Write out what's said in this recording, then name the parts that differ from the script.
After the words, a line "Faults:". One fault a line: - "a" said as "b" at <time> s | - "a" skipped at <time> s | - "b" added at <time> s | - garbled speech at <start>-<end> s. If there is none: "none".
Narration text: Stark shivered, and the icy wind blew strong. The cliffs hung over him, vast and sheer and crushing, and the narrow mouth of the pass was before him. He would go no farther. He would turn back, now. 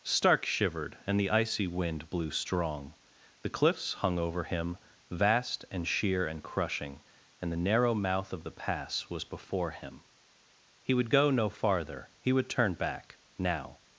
Stark shivered, and the icy wind blew strong. The cliffs hung over him, vast and sheer and crushing, and the narrow mouth of the pass was before him. He would go no farther. He would turn back, now.
Faults:
none